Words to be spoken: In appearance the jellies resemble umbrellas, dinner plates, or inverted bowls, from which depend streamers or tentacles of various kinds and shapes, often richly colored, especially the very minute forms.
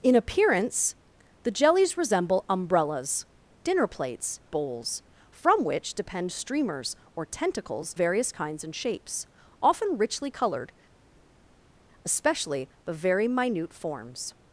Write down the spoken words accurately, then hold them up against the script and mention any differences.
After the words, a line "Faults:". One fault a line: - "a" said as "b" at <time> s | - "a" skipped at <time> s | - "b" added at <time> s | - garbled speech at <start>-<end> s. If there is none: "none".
In appearance the jellies resemble umbrellas, dinner plates, bowls, from which depend streamers or tentacles various kinds and shapes, often richly colored, especially the very minute forms.
Faults:
- "or inverted" skipped at 4.4 s
- "of" skipped at 7.9 s